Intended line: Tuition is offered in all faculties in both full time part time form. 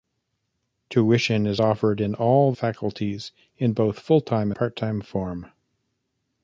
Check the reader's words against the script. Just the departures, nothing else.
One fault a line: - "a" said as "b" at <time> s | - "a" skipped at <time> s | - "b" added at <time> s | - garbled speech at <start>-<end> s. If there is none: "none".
none